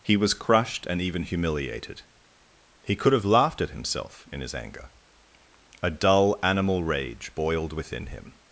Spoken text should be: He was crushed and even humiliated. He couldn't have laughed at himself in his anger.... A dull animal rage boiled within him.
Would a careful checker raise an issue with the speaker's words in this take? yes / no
yes